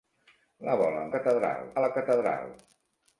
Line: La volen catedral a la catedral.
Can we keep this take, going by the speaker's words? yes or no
yes